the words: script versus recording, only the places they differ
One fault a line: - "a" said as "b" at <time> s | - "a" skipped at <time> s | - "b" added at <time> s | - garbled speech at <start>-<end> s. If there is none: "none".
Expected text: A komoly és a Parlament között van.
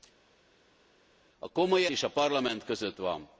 none